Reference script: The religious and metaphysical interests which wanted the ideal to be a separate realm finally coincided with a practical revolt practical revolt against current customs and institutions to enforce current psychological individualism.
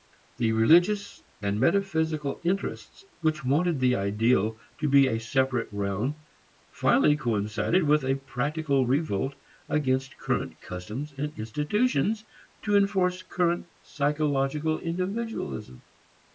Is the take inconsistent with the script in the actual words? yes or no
yes